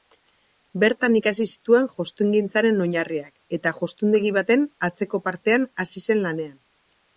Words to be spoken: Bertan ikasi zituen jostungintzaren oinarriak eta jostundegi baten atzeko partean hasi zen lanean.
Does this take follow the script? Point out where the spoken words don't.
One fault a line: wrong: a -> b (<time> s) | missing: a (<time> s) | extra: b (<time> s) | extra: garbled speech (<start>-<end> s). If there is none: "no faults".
no faults